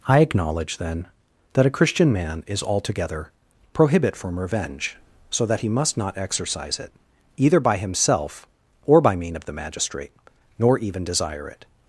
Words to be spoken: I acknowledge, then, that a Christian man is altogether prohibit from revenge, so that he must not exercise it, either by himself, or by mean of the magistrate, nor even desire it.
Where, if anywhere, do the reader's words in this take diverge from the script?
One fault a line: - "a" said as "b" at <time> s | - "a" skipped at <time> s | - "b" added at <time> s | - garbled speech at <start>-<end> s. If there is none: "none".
none